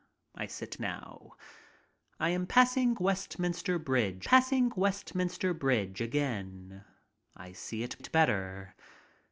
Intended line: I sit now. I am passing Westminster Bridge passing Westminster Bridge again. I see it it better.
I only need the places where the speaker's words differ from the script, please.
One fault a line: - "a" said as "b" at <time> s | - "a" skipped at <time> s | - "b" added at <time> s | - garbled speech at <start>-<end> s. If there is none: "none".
none